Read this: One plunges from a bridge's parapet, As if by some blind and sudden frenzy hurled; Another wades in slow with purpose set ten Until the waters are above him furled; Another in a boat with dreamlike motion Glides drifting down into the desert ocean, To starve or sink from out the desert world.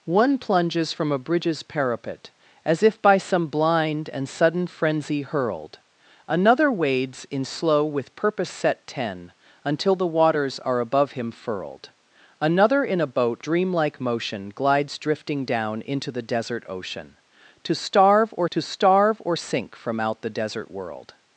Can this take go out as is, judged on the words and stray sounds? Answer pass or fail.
fail